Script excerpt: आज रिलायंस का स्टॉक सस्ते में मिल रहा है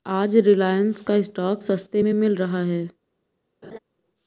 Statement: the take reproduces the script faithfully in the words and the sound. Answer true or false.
false